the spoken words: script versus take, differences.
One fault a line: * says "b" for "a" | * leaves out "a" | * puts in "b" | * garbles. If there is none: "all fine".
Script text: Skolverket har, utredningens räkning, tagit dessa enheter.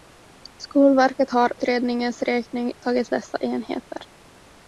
all fine